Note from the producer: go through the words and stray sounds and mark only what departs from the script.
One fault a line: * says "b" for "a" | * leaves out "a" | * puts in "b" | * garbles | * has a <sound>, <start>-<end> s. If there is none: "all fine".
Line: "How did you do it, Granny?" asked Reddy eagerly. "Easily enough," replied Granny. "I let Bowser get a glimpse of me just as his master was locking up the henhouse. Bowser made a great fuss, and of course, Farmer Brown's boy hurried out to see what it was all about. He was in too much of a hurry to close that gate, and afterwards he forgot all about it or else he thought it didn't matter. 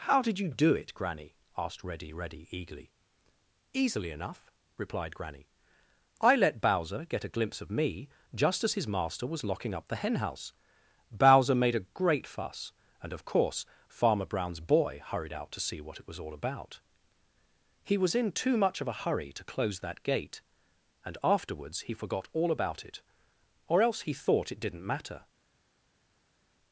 * puts in "Reddy"